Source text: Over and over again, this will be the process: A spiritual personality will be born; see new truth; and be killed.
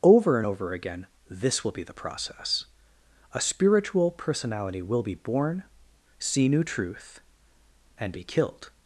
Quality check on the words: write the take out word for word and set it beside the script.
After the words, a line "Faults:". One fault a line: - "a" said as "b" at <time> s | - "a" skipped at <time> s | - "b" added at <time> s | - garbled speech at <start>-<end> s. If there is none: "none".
Over and over again, this will be the process: A spiritual personality will be born; see new truth; and be killed.
Faults:
none